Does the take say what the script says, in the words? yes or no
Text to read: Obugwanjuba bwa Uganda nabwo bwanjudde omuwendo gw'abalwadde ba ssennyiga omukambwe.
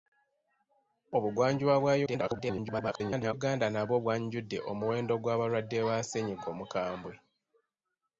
no